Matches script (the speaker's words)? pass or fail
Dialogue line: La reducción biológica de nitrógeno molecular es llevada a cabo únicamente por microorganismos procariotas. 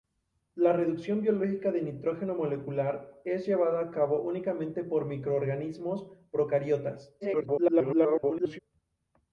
fail